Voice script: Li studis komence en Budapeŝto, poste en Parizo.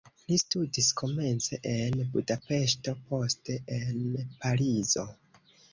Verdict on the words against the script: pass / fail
pass